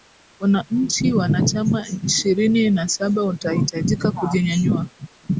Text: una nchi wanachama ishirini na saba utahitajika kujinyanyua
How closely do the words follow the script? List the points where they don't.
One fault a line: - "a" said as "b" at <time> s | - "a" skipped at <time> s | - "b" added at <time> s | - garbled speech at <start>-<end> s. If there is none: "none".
none